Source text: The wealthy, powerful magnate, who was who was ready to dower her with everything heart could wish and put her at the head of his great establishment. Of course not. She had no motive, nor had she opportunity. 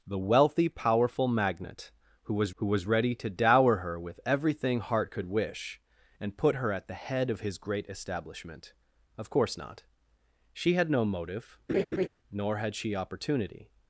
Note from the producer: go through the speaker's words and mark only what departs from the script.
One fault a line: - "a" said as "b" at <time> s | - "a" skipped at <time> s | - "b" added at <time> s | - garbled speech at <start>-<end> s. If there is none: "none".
none